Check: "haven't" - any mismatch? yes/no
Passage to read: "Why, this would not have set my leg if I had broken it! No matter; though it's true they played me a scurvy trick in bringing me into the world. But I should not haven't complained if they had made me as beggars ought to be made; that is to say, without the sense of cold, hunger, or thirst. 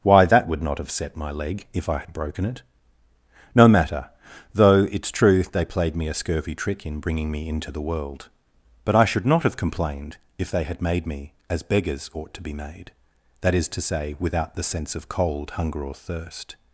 yes